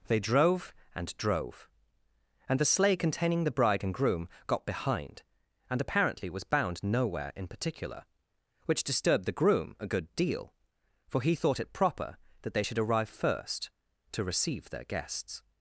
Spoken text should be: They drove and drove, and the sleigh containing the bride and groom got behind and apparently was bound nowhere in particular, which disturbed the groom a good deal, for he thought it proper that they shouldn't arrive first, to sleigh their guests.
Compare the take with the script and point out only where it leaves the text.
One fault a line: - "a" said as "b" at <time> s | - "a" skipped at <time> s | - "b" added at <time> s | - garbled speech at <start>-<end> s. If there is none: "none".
- "shouldn't" said as "should" at 12.6 s
- "sleigh" said as "receive" at 14.2 s